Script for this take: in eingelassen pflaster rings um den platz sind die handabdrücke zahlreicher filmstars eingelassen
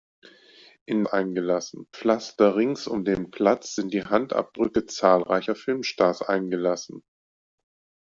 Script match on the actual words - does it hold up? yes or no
yes